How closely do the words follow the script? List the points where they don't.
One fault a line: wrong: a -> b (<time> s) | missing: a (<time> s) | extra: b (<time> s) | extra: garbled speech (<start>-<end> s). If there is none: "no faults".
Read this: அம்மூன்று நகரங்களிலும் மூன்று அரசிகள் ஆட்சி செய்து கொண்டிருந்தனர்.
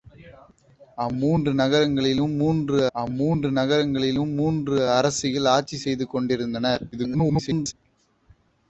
extra: அம்மூன்று நகரங்களிலும் மூன்று (2.9 s)
extra: garbled speech (6.9-7.7 s)